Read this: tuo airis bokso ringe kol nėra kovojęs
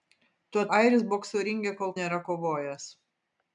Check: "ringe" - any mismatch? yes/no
no